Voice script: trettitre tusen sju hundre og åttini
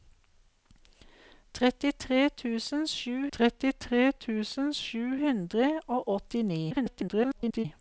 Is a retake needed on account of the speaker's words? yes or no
yes